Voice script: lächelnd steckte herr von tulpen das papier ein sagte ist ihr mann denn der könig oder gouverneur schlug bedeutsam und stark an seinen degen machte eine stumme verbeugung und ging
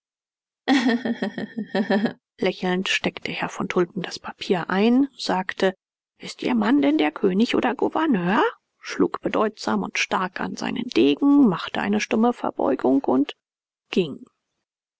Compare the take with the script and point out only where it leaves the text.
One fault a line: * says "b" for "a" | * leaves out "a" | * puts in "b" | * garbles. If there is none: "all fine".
all fine